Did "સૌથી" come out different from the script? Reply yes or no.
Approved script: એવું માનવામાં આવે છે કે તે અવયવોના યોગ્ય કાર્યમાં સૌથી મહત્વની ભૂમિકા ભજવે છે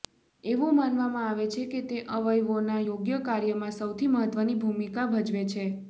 no